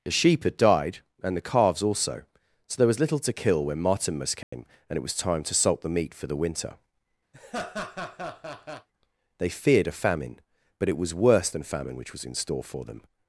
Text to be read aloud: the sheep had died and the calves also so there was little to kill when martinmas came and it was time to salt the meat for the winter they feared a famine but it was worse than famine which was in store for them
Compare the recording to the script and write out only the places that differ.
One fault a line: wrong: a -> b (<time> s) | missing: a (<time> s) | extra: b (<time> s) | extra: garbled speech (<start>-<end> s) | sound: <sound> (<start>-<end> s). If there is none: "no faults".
sound: dropout (4.4-4.5 s)
sound: laugh (7.3-8.9 s)